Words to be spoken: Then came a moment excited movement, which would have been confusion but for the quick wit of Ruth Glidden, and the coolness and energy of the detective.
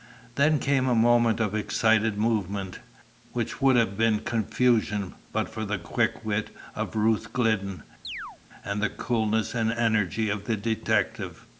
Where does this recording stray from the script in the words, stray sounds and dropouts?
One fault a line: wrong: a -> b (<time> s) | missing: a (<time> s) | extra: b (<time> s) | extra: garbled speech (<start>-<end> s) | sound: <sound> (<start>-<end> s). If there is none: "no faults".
extra: of (1.4 s)
sound: chirp (8.0-8.4 s)